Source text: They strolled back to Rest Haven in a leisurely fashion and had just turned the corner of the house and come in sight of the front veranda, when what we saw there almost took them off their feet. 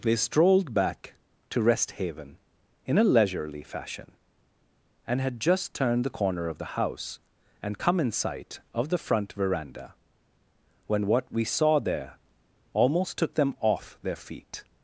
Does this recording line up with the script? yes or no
yes